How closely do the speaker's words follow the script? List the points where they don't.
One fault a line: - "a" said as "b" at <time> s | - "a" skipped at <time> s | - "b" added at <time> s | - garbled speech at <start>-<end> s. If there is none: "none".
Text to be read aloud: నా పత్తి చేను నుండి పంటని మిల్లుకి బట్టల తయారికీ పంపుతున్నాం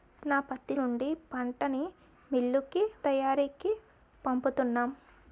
- "చేను" skipped at 0.8 s
- "బట్టల" skipped at 2.8 s